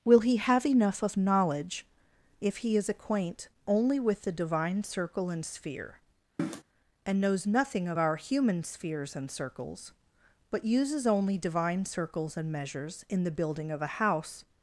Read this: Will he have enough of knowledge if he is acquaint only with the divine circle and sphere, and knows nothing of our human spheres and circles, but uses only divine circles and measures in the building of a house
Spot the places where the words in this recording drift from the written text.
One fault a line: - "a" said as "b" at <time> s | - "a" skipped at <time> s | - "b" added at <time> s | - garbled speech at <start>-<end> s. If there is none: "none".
none